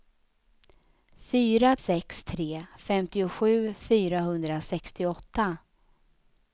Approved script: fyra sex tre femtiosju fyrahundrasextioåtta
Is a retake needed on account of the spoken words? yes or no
no